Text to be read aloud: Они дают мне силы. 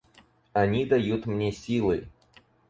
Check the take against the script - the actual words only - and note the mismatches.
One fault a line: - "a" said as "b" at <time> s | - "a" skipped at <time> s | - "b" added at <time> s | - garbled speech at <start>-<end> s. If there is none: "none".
none